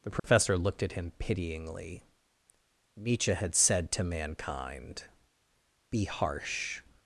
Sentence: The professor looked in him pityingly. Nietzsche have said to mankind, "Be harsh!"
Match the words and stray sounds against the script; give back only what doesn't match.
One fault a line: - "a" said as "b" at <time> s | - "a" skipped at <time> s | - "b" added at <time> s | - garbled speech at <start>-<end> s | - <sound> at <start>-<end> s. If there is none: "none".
- dropout at 0.2-0.2 s
- "in" said as "at" at 0.8 s
- "have" said as "had" at 3.3 s